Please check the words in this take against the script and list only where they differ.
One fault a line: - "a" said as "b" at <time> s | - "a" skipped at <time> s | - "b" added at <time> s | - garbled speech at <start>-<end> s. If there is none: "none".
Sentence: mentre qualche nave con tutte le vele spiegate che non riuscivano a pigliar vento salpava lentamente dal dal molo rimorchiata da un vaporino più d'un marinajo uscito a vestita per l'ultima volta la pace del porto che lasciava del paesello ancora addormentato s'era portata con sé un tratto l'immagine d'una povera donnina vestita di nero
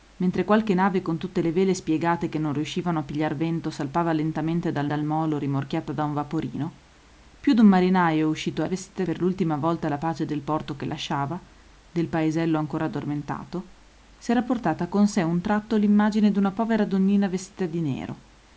none